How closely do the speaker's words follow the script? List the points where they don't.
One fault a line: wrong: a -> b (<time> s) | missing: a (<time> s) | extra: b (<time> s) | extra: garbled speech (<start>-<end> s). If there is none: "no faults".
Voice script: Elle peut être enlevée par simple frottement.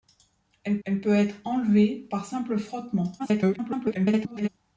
extra: elle (0.8 s)
extra: garbled speech (3.2-4.5 s)